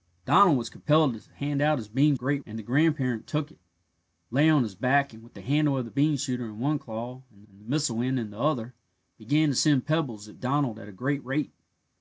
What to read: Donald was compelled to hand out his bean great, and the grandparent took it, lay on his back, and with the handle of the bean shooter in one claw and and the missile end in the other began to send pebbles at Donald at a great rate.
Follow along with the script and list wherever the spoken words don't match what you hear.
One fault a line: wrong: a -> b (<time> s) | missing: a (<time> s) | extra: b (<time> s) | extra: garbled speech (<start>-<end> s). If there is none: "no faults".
no faults